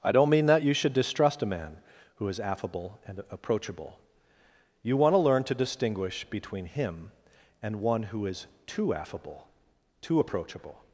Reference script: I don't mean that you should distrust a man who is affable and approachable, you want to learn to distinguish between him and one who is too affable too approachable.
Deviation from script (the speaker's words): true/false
false